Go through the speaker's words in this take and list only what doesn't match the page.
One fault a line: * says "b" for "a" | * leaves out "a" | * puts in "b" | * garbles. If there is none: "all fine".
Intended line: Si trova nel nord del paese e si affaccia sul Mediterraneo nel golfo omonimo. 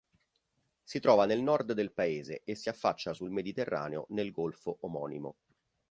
all fine